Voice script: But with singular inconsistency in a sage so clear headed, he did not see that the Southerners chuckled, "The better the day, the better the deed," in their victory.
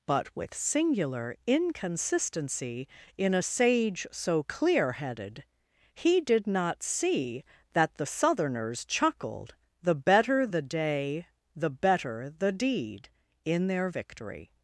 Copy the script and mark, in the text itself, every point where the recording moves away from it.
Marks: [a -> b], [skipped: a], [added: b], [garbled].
But with singular inconsistency in a sage so clear headed, he did not see that the Southerners chuckled, "The better the day, the better the deed," in their victory.